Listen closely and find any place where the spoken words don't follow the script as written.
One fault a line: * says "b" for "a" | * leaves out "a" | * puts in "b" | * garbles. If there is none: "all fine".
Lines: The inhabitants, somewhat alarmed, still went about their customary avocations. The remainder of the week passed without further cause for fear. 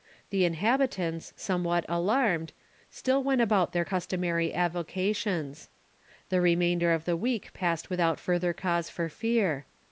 all fine